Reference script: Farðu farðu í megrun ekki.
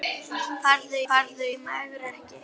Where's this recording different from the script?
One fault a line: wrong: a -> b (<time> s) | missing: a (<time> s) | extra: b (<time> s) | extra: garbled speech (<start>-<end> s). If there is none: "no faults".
no faults